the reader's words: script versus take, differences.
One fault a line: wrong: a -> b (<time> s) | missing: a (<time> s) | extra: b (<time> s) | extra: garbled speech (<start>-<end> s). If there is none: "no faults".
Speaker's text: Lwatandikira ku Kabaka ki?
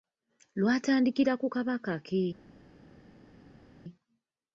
no faults